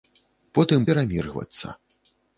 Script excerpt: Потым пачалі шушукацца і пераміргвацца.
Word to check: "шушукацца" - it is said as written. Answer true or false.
false